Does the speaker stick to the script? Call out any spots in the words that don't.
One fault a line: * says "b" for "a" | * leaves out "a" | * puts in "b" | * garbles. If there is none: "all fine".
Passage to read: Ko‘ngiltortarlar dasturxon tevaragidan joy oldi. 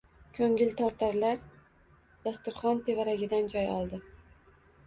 all fine